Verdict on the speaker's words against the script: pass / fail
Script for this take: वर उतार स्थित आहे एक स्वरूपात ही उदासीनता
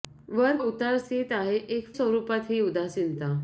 pass